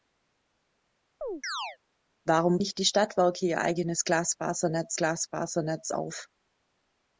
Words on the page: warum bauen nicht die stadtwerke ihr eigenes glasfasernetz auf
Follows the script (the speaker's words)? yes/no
no